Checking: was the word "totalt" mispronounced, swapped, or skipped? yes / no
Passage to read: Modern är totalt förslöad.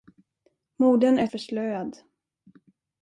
yes